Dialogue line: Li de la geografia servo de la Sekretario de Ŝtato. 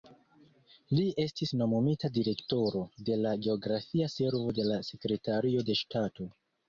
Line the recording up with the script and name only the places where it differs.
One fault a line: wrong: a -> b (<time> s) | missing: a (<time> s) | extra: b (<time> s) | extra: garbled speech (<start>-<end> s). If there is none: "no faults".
extra: estis nomumita direktoro (1.2 s)